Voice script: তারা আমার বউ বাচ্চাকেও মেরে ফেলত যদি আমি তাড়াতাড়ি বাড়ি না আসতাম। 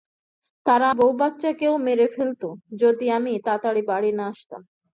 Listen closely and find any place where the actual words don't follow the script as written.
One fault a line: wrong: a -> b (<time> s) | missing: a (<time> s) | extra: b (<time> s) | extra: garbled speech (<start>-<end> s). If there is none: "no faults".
missing: আমার (0.9 s)